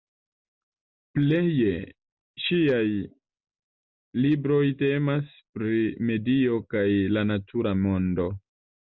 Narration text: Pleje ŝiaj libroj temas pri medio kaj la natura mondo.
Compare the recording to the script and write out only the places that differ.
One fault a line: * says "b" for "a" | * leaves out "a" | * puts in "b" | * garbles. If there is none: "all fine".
all fine